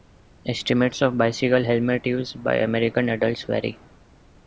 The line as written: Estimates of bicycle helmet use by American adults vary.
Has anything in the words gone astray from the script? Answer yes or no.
no